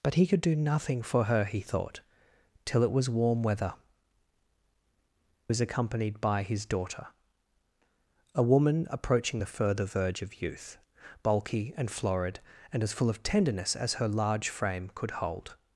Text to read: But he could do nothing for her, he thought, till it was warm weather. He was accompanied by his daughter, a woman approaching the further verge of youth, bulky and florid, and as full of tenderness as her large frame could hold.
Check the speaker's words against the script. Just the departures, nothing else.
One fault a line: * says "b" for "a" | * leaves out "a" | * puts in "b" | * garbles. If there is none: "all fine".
* leaves out "He"